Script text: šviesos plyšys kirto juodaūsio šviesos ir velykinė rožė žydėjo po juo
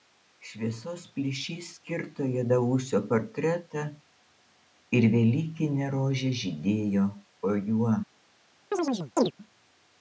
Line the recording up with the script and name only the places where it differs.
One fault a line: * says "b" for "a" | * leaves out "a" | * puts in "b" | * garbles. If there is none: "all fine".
* says "portretą" for "šviesos"